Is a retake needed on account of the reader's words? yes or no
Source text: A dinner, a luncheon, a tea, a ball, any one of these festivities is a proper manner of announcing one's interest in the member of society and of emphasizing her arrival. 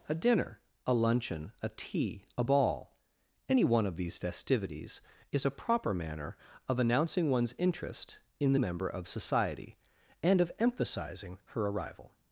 no